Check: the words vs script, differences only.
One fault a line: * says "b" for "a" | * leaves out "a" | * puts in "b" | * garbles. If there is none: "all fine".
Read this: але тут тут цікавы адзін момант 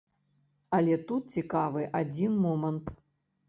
* leaves out "тут"